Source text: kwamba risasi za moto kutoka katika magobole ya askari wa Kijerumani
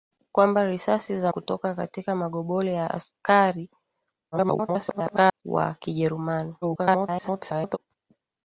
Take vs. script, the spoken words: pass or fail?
fail